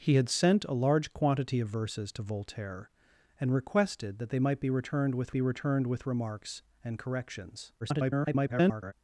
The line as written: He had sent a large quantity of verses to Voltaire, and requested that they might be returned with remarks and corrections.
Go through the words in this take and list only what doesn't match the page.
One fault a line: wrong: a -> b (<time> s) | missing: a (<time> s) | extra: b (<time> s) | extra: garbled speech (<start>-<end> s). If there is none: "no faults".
extra: be returned with (5.3 s)
extra: garbled speech (7.8-8.9 s)